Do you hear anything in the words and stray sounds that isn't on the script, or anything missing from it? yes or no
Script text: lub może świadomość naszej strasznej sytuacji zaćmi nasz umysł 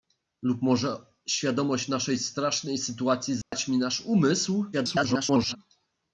yes